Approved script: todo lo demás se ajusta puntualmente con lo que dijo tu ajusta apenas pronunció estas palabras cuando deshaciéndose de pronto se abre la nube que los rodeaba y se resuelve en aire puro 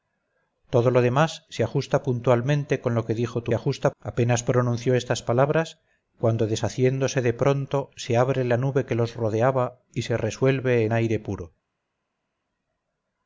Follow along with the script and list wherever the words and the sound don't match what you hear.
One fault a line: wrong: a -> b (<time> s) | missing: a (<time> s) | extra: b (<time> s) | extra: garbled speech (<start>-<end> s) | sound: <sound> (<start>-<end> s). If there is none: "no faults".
no faults